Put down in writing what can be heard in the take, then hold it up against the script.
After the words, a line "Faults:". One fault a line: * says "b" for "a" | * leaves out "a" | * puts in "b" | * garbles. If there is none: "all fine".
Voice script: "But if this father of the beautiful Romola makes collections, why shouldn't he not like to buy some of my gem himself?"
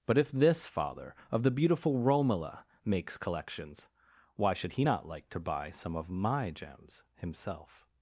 "But if this father of the beautiful Romola makes collections, why should he not like to buy some of my gems himself?"
Faults:
* says "should" for "shouldn't"
* says "gems" for "gem"